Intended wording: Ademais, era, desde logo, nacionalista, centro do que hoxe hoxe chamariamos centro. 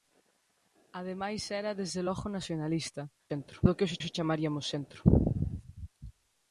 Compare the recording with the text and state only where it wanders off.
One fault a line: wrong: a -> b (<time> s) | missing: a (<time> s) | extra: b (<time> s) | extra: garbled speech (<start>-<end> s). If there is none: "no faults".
no faults